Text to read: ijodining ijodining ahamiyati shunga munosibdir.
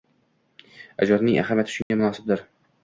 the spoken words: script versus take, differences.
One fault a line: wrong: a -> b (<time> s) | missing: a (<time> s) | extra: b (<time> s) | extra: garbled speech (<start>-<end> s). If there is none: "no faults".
missing: ijodining (1.4 s)